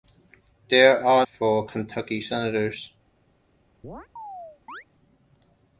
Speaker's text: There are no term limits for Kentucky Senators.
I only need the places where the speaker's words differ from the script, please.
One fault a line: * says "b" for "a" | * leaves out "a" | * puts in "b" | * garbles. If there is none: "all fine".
* leaves out "no term limits"